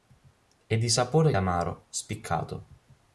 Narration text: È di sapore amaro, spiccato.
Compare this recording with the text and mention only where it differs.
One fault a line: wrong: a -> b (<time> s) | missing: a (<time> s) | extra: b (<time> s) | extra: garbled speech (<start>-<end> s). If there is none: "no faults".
no faults